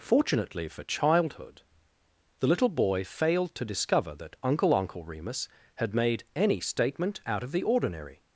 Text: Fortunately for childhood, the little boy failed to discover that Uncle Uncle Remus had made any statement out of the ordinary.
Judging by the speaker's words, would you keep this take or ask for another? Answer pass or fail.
pass